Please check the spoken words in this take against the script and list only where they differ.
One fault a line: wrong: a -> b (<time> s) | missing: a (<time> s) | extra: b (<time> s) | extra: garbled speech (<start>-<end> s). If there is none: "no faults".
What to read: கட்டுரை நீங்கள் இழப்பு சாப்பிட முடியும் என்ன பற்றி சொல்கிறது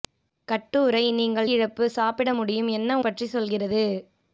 no faults